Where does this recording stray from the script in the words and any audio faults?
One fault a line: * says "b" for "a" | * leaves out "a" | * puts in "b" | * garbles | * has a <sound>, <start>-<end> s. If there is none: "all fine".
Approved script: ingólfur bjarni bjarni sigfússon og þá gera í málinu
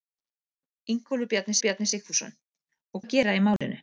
* has a dropout, 3.6-3.6 s